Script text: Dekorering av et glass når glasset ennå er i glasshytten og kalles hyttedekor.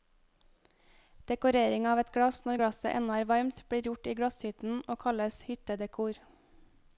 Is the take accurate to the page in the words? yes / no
no